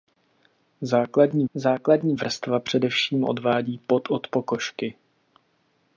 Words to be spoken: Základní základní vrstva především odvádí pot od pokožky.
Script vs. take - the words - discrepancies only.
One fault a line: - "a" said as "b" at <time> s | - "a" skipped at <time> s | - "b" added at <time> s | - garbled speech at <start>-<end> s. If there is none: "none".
none